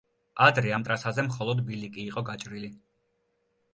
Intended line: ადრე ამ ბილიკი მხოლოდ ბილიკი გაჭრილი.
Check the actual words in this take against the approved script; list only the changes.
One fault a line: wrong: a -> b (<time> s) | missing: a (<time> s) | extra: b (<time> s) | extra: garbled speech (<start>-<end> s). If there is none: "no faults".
wrong: ბილიკი -> ტრასაზე (0.9 s)
extra: იყო (2.1 s)